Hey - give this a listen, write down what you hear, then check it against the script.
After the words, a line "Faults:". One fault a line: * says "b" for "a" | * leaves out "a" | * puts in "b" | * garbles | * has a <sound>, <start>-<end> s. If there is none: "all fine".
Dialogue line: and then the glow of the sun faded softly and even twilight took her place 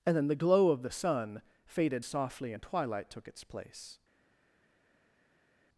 and then the glow of the sun faded softly and twilight took its place
Faults:
* leaves out "even"
* says "its" for "her"